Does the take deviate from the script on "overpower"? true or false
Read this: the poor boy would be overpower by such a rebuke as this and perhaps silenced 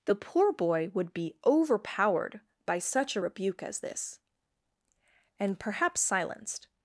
true